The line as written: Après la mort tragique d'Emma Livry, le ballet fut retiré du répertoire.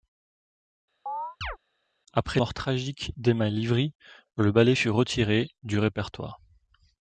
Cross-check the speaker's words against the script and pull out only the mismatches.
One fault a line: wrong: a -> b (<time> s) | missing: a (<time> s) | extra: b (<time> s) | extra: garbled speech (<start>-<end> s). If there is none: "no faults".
missing: la (2.4 s)